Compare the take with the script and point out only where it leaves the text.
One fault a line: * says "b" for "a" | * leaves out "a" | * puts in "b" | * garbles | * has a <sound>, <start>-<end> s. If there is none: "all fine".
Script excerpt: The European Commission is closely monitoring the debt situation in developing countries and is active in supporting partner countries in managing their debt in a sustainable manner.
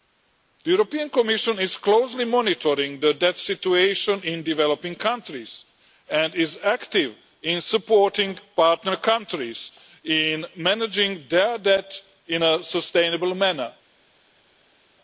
all fine